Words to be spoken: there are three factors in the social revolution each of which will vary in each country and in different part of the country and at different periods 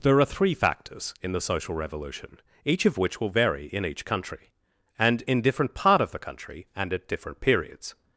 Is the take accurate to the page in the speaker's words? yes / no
yes